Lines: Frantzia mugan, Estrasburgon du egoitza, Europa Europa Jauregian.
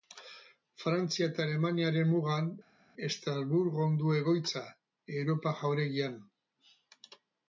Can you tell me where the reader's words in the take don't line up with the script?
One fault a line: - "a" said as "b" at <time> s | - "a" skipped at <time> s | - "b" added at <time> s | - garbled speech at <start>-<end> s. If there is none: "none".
- "eta Alemaniaren" added at 1.3 s
- "Europa" skipped at 5.6 s